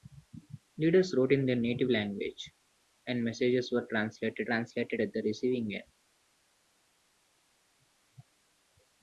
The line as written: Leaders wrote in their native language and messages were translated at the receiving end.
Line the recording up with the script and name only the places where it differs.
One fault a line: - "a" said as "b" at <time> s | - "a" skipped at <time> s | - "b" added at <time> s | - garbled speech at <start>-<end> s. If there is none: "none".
- "translated" added at 4.5 s